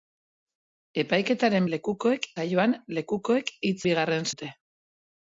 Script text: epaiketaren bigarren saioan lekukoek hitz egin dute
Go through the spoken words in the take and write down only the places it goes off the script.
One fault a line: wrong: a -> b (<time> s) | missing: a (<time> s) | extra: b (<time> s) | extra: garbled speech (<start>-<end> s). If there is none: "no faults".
wrong: bigarren -> lekukoek (1.8 s)
wrong: egin -> bigarren (3.9 s)